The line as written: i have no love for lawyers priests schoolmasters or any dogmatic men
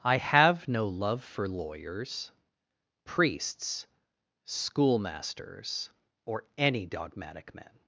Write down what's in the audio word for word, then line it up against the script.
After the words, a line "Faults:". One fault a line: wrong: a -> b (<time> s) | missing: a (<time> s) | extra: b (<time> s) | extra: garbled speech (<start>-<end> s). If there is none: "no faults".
i have no love for lawyers priests schoolmasters or any dogmatic men
Faults:
no faults